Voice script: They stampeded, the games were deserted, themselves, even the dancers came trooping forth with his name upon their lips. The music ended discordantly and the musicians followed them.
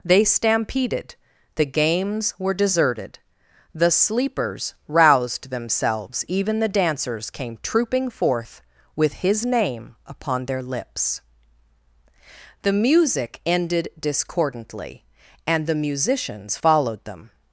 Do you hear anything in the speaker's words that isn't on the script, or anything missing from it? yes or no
yes